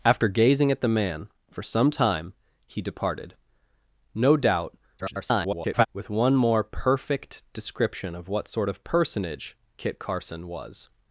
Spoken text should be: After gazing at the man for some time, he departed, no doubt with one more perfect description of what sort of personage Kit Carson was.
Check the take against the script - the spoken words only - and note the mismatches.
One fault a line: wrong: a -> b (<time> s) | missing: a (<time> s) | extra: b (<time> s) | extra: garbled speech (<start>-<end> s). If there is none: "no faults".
extra: garbled speech (5.0-5.9 s)